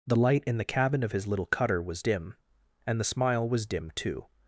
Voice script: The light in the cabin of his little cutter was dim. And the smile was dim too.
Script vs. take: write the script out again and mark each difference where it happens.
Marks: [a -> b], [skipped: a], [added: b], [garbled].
The light in the cabin of his little cutter was dim. And the smile was dim too.